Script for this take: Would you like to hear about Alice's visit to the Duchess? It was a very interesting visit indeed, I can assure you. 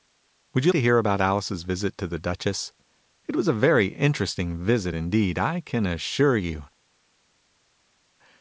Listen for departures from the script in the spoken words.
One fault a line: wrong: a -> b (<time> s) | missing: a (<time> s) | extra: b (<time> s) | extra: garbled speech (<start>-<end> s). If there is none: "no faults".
missing: like (0.7 s)